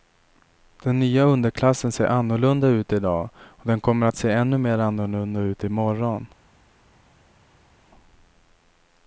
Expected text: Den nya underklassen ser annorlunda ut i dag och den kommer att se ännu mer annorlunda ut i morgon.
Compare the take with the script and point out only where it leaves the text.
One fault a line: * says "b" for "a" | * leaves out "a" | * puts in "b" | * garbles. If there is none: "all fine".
all fine